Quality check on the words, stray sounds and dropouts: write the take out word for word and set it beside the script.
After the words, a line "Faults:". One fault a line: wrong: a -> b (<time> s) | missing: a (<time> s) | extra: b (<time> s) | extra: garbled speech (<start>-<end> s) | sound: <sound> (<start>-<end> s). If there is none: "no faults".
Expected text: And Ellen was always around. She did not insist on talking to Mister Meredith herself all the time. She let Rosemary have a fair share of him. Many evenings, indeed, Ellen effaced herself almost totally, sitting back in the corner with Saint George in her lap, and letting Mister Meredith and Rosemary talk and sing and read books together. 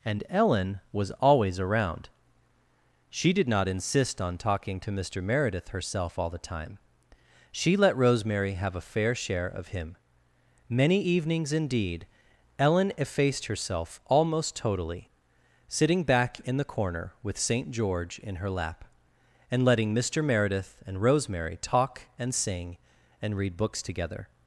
And Ellen was always around. She did not insist on talking to Mister Meredith herself all the time. She let Rosemary have a fair share of him. Many evenings, indeed, Ellen effaced herself almost totally, sitting back in the corner with Saint George in her lap, and letting Mister Meredith and Rosemary talk and sing and read books together.
Faults:
no faults